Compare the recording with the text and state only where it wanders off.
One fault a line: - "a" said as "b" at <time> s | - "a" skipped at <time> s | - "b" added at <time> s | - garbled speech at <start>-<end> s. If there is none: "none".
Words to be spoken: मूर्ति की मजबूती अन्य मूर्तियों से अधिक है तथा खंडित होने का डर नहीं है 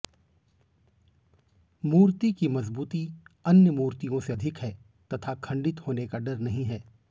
none